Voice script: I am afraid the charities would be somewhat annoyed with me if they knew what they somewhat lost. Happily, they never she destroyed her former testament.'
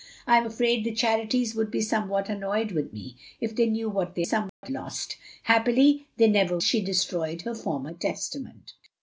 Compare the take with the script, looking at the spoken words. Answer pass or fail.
pass